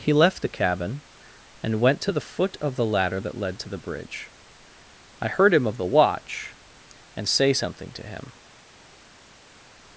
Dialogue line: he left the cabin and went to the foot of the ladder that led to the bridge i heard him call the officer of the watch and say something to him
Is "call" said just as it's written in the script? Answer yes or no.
no